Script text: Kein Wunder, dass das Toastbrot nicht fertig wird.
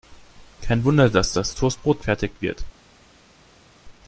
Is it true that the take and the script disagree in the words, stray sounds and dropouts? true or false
true